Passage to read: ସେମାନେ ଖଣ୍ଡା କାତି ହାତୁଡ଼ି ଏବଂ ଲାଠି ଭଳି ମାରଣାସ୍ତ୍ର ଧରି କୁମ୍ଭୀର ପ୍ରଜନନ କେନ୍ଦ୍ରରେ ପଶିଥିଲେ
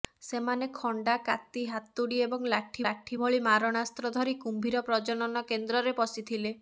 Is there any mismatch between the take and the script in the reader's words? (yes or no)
yes